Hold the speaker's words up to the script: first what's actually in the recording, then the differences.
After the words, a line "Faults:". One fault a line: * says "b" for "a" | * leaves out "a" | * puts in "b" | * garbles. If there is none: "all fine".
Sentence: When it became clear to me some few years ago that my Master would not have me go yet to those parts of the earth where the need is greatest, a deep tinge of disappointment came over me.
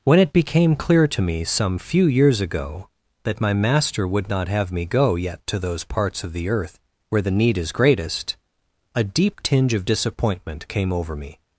When it became clear to me some few years ago that my Master would not have me go yet to those parts of the earth where the need is greatest, a deep tinge of disappointment came over me.
Faults:
all fine